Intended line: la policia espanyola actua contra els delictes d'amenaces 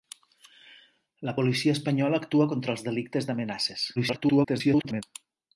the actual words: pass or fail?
fail